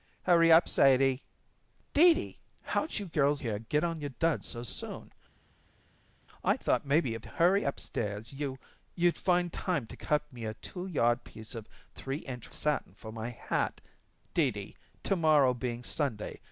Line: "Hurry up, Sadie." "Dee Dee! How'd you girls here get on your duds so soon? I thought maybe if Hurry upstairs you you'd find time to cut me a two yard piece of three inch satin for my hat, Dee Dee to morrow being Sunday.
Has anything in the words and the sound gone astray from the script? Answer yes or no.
no